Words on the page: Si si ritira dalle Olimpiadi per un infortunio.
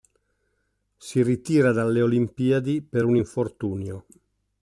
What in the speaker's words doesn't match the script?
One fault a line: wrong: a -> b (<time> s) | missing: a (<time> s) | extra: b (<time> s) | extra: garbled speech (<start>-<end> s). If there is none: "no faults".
missing: si (1.2 s)